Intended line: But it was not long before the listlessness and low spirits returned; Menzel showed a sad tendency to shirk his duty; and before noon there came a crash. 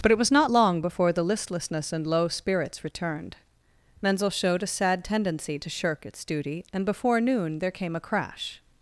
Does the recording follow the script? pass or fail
fail